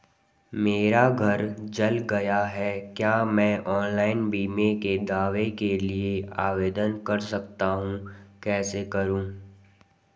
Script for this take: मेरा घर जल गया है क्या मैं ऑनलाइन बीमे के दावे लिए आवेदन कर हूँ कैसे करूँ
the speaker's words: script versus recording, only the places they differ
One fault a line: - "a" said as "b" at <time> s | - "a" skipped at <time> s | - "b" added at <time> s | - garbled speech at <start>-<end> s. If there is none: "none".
- "के" added at 5.6 s
- "सकता" added at 7.2 s